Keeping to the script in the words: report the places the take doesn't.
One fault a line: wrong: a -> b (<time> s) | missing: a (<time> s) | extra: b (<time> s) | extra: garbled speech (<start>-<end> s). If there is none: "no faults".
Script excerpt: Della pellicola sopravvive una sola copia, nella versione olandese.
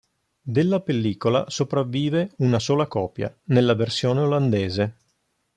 no faults